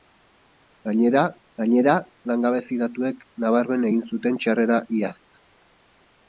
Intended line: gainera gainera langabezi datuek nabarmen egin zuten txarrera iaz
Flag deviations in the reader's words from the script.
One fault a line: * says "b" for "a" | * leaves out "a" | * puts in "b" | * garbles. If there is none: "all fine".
all fine